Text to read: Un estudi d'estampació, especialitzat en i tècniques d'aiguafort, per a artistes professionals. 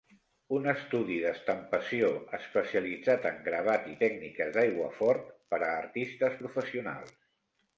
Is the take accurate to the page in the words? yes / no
no